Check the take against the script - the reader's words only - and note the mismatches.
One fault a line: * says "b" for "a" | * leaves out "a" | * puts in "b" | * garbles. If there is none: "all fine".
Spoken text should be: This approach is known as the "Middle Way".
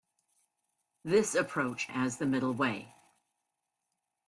* leaves out "is known"